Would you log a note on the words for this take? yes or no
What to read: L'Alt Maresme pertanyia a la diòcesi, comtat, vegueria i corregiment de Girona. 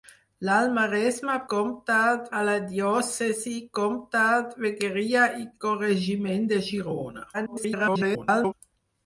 yes